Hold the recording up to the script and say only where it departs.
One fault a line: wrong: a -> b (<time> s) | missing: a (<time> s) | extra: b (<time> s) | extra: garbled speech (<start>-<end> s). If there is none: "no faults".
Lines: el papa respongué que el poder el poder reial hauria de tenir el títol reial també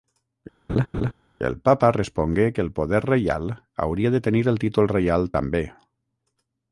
missing: el poder (3.0 s)